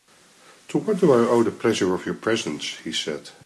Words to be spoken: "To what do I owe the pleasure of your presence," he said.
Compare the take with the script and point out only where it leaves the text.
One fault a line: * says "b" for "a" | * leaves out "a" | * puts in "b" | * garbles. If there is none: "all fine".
all fine